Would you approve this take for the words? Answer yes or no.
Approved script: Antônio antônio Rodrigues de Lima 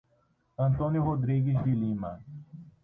no